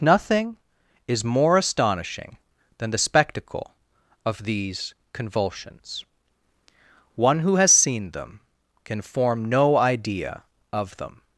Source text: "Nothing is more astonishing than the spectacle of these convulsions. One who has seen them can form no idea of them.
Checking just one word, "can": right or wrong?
right